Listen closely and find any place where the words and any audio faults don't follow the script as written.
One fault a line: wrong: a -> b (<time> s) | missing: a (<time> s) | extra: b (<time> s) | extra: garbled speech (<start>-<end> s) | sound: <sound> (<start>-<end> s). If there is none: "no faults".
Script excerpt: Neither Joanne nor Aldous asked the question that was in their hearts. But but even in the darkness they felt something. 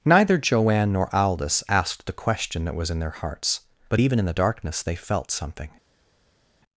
missing: but (4.0 s)